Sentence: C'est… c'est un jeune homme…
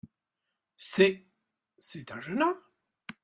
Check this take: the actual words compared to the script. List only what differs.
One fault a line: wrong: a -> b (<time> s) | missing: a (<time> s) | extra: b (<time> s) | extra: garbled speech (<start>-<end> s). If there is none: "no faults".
no faults